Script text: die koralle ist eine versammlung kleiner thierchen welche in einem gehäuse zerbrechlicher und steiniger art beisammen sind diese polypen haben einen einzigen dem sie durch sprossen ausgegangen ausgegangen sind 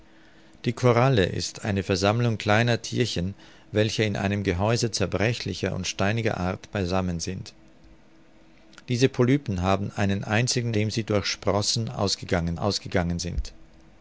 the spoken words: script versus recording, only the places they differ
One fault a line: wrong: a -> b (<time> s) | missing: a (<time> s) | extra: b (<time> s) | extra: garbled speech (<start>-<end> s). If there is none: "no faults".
no faults